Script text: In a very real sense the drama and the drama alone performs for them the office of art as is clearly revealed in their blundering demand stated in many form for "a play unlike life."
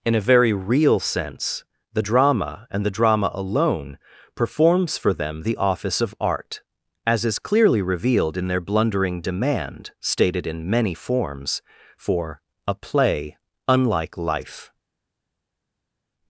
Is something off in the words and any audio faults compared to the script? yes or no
yes